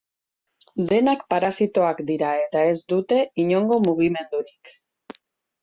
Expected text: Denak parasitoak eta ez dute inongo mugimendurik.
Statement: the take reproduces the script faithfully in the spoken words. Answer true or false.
false